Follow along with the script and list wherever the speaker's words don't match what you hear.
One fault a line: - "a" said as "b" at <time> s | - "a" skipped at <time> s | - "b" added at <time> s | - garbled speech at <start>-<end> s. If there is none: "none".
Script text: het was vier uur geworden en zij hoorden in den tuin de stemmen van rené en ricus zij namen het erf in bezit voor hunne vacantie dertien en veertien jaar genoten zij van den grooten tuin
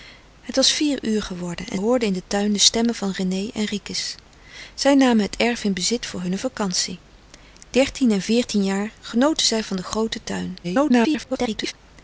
- "zij" skipped at 1.8 s
- garbled speech at 10.6-11.7 s